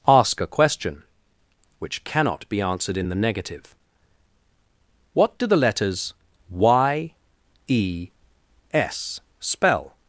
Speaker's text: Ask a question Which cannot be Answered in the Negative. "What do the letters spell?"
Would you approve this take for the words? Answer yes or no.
no